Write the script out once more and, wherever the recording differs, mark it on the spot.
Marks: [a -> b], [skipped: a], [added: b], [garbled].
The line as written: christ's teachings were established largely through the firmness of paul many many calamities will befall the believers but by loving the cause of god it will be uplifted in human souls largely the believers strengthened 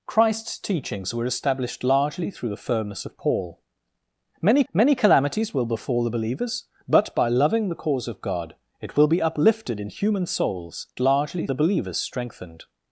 christ's teachings were established largely through the firmness of paul many many calamities will befall the believers but by loving the cause of god it will be uplifted in human souls largely the believers strengthened